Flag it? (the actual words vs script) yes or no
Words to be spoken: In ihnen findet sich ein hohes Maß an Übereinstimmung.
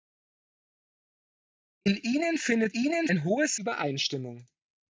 yes